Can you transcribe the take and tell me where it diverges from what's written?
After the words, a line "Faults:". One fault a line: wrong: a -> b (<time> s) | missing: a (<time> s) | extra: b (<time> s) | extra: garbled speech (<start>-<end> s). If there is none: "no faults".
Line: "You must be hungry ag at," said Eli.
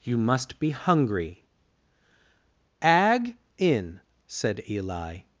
"You must be hungry ag in," said Eli.
Faults:
wrong: at -> in (3.6 s)